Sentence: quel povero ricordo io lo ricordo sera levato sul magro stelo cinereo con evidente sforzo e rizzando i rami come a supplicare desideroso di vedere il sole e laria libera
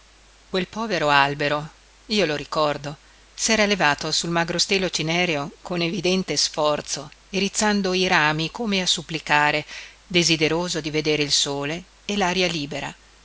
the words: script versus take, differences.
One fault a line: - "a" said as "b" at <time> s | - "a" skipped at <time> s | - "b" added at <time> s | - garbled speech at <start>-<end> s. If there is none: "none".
- "ricordo" said as "albero" at 1.1 s